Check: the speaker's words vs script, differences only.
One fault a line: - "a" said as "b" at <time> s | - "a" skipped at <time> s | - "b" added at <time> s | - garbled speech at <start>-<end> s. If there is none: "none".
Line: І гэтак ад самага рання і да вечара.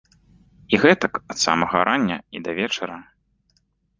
none